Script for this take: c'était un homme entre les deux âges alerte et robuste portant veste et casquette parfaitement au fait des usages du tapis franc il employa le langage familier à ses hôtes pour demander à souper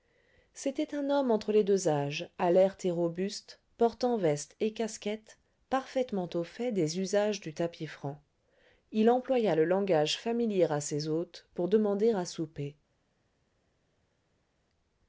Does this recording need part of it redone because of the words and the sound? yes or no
no